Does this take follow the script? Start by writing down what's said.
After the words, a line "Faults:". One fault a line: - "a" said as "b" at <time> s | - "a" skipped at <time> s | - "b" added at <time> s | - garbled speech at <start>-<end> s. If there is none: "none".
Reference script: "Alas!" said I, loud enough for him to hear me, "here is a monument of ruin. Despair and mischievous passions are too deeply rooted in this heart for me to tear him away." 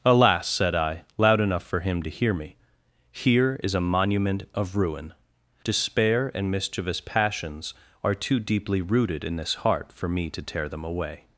"Alas!" said I, loud enough for him to hear me, "here is a monument of ruin. Despair and mischievous passions are too deeply rooted in this heart for me to tear them away."
Faults:
- "him" said as "them" at 10.7 s